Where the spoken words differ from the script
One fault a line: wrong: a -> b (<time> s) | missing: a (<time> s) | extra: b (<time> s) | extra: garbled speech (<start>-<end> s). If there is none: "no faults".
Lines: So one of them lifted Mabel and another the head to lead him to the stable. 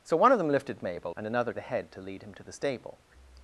no faults